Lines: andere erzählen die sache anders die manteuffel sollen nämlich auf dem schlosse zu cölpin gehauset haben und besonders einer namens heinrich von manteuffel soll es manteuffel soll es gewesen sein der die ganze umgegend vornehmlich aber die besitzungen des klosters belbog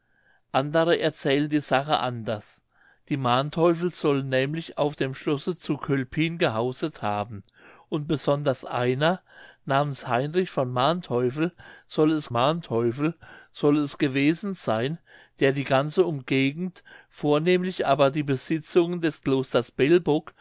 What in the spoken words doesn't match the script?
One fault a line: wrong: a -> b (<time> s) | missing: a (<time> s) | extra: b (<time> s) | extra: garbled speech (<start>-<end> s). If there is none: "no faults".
no faults